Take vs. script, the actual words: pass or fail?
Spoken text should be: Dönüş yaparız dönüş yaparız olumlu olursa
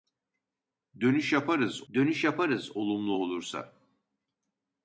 pass